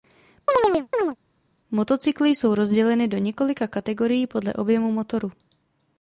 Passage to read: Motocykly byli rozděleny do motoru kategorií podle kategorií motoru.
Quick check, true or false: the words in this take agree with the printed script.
false